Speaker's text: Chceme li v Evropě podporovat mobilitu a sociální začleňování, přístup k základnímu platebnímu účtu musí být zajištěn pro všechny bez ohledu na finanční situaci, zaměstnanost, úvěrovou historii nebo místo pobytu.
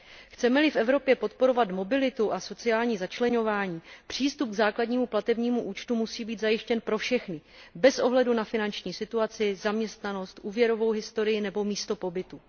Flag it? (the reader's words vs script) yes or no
no